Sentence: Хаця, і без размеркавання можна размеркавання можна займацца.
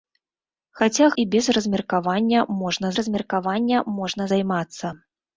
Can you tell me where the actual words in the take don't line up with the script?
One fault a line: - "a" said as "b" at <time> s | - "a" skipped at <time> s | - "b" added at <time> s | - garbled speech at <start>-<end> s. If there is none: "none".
none